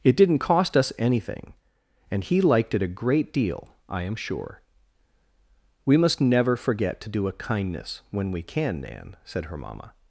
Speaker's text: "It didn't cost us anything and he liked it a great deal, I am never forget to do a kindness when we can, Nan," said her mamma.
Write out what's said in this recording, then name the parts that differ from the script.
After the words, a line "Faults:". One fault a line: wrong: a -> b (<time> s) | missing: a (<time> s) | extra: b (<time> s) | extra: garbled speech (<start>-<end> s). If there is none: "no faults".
"It didn't cost us anything and he liked it a great deal, I am sure." "We must never forget to do a kindness when we can, Nan," said her mamma.
Faults:
extra: sure We must (4.2 s)